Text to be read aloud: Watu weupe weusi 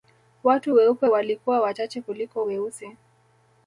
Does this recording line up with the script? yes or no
no